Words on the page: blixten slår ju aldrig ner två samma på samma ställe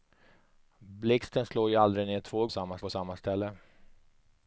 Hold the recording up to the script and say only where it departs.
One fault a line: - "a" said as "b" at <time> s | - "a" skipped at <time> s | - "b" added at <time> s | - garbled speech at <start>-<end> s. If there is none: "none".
none